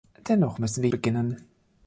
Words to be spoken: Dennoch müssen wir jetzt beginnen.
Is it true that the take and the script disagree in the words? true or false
true